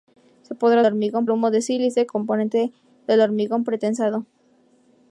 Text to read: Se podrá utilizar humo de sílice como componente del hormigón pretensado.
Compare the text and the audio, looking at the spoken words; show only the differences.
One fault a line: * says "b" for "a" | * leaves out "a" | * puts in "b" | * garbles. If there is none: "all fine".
* says "hormigón" for "utilizar"
* leaves out "como"